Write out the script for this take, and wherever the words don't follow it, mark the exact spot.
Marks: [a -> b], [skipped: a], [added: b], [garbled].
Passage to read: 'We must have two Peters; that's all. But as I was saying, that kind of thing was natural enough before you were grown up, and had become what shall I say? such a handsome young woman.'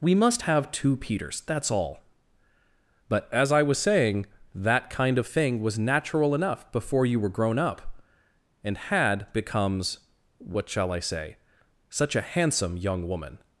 'We must have two Peters; that's all. But as I was saying, that kind of thing was natural enough before you were grown up, and had [become -> becomes] what shall I say? such a handsome young woman.'